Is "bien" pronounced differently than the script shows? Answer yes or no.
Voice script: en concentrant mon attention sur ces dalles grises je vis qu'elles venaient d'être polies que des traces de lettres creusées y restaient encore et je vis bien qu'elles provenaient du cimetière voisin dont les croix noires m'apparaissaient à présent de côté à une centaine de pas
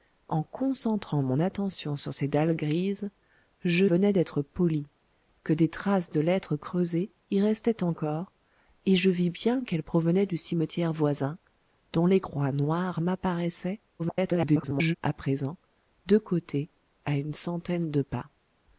no